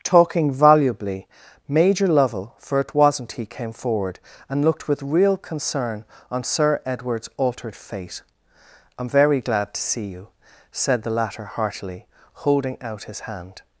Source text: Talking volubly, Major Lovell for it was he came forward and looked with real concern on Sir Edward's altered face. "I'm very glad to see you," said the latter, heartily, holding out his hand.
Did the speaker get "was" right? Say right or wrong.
wrong